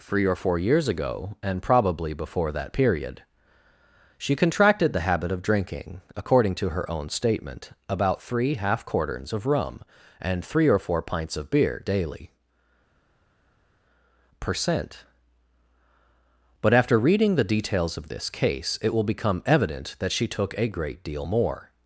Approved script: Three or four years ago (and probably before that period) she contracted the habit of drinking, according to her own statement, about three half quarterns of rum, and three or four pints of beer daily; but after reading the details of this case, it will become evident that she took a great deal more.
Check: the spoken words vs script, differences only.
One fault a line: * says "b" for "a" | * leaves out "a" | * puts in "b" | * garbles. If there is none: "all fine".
* puts in "percent"